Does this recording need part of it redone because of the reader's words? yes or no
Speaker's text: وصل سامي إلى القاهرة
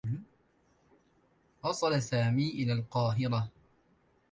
no